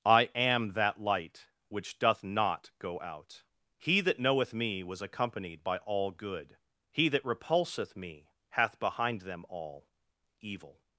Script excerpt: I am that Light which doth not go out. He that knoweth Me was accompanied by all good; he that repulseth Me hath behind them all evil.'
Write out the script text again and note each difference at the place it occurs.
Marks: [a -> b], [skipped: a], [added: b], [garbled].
I am that Light which doth not go out. He that knoweth Me was accompanied by all good; he that repulseth Me hath behind them all evil.'